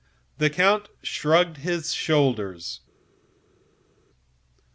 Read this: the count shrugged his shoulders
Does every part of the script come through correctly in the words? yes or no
yes